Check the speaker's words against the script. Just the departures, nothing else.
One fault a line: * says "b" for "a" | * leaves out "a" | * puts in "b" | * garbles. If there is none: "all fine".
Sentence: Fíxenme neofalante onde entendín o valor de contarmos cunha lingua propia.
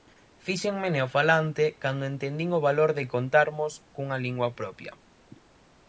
* says "cando" for "onde"